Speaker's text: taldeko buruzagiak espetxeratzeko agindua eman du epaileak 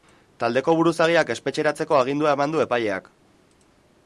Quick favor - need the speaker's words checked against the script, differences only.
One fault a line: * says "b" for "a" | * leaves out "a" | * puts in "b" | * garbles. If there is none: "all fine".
all fine